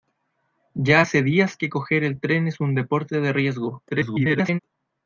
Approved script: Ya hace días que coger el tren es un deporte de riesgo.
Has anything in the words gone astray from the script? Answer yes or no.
yes